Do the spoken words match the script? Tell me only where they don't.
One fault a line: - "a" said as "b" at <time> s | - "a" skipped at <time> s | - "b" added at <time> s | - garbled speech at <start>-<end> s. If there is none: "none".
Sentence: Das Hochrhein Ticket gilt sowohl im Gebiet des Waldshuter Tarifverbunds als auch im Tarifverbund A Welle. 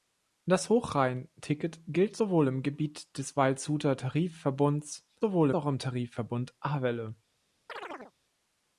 - "als" said as "sowohl" at 5.2 s